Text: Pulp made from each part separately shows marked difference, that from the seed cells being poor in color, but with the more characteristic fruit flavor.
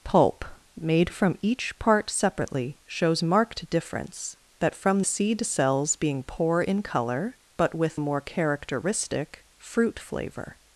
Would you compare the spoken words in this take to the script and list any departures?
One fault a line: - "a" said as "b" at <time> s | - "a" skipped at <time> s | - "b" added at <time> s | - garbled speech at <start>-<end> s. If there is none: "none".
- "the" skipped at 5.0 s
- "the" skipped at 8.0 s